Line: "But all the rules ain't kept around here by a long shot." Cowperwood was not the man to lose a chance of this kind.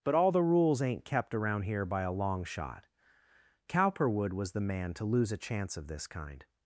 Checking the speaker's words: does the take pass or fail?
fail